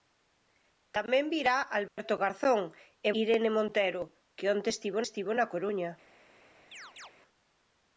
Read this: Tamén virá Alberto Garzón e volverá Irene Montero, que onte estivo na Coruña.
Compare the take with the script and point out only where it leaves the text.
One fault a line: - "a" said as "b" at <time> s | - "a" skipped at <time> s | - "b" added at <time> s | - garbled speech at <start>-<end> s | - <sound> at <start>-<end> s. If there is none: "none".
- dropout at 1.9-2.0 s
- "volverá" skipped at 3.1 s
- "estivo" added at 5.0 s
- chirp at 6.7-7.1 s